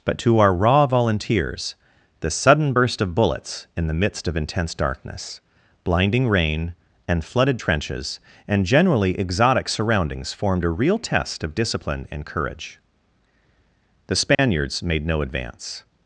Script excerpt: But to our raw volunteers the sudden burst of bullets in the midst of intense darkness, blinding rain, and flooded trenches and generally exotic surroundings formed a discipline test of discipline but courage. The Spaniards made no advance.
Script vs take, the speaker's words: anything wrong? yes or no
yes